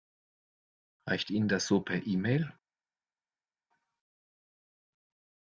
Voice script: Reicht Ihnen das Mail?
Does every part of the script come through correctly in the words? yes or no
no